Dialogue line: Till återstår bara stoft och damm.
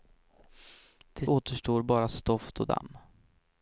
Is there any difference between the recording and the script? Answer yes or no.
no